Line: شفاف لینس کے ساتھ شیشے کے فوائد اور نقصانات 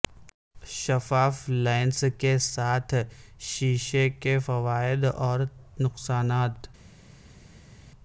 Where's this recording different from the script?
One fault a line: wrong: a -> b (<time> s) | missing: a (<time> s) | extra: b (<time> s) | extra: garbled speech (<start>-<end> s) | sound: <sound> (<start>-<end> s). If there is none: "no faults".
no faults